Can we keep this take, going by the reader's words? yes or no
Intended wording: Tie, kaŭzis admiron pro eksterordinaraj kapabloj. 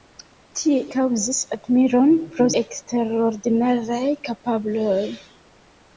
yes